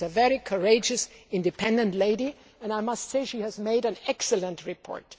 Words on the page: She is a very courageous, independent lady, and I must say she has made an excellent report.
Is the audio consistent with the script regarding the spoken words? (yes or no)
yes